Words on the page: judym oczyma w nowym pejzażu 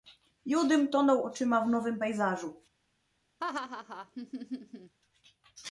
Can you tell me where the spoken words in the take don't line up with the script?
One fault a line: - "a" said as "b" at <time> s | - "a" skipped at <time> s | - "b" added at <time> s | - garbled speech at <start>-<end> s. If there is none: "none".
- "tonął" added at 0.9 s